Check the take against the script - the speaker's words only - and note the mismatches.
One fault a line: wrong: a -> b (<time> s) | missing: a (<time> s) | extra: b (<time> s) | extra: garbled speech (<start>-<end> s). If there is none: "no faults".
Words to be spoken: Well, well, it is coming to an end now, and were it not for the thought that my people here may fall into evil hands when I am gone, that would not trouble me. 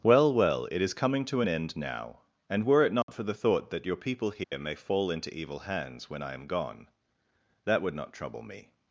wrong: my -> your (3.9 s)